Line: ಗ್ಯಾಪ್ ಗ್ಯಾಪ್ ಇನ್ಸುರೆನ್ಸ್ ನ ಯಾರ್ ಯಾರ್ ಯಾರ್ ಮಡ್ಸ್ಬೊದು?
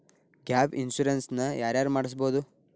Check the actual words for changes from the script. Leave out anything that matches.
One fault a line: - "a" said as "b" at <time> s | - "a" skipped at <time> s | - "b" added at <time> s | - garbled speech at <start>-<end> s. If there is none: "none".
- "ಗ್ಯಾಪ್" skipped at 0.8 s
- "ಯಾರ್" skipped at 1.9 s